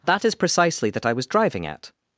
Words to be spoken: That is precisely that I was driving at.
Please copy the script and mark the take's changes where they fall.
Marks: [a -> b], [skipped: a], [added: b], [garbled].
That is precisely that I was driving at.